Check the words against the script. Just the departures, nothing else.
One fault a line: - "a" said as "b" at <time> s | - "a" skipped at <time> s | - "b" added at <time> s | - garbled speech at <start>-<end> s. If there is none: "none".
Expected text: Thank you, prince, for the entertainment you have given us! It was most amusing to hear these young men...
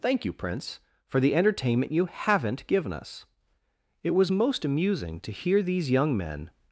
- "have" said as "haven't" at 2.0 s